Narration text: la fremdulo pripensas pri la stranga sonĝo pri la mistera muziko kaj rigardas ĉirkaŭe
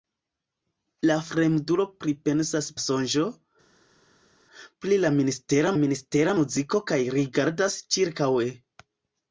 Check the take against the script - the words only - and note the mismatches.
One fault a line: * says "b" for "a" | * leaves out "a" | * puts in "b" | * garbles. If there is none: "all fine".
* leaves out "pri la stranga"
* puts in "mistera"